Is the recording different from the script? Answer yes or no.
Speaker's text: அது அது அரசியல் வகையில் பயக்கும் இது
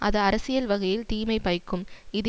yes